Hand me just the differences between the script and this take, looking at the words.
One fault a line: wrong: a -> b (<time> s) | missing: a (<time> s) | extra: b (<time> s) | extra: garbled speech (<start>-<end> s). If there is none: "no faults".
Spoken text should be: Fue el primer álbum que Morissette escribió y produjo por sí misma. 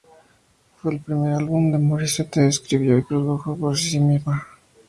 no faults